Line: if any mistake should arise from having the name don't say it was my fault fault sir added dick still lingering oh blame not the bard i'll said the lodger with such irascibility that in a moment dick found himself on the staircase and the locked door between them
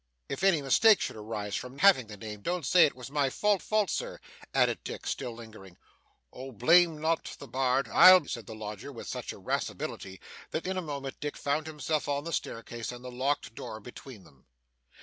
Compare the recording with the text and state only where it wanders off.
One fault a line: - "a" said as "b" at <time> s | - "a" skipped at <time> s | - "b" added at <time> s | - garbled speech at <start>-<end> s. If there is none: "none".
none